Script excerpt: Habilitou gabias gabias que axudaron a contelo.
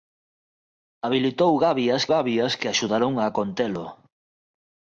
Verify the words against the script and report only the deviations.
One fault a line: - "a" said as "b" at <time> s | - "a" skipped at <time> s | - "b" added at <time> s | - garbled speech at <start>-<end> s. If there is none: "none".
none